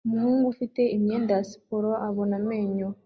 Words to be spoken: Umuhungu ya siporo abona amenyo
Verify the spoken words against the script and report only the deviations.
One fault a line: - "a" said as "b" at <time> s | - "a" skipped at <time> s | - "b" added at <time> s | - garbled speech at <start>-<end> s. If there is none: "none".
- "ufite imyenda" added at 0.5 s